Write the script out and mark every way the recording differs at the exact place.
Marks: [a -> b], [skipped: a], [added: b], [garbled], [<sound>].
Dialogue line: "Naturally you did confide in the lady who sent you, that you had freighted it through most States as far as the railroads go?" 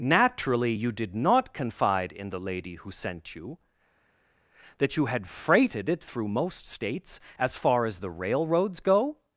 "Naturally you did [added: not] confide in the lady who sent you, that you had freighted it through most States as far as the railroads go?"